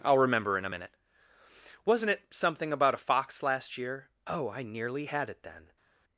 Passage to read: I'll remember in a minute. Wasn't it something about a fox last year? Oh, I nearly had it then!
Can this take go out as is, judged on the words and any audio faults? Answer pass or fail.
pass